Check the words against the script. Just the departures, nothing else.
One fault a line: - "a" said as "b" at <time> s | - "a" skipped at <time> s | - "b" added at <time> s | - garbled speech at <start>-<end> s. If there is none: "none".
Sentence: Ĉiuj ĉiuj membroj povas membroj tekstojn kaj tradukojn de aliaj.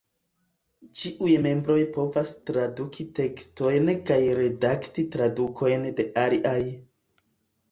- "ĉiuj" skipped at 1.3 s
- "membroj" said as "traduki" at 2.5 s
- "redakti" added at 4.4 s